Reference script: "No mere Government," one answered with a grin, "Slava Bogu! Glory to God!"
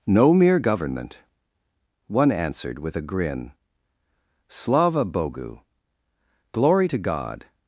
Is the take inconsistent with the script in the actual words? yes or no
no